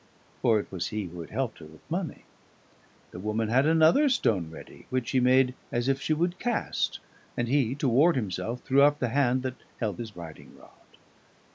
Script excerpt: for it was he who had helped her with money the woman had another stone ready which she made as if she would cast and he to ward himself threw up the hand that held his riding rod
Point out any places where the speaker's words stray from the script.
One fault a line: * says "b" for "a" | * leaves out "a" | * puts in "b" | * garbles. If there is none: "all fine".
all fine